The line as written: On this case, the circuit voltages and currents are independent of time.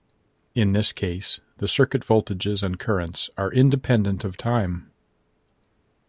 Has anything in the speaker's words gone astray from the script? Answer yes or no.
yes